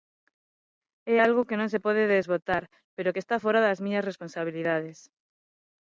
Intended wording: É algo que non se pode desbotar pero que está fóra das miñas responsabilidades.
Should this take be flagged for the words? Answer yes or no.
no